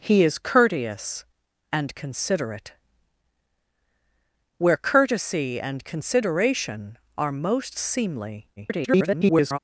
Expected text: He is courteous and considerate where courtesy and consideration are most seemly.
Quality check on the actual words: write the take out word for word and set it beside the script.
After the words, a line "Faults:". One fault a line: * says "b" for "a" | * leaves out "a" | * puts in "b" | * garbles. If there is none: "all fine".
He is courteous and considerate where courtesy and consideration are most seemly. [garbled]
Faults:
* garbles